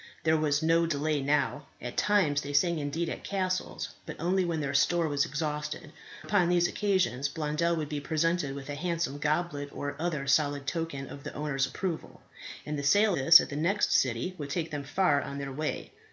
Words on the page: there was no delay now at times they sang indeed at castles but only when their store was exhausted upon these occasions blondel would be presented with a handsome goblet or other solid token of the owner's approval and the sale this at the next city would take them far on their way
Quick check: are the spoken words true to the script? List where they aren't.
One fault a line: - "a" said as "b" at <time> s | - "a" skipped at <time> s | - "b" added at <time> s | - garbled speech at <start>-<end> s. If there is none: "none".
none